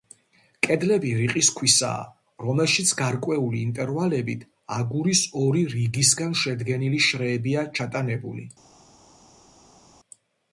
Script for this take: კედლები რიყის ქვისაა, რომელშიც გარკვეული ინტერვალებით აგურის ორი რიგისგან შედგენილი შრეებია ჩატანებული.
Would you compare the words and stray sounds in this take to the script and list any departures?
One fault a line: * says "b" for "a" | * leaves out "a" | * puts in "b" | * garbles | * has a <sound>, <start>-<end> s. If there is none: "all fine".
all fine